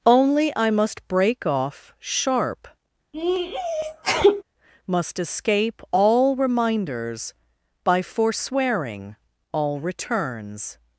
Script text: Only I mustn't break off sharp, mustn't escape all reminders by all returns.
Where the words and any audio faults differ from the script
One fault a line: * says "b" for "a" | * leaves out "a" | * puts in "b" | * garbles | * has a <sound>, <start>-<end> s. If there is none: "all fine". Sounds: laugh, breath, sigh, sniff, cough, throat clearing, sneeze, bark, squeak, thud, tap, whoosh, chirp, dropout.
* says "must" for "mustn't"
* has a sneeze, 3.1-4.4 s
* says "must" for "mustn't"
* puts in "forswearing"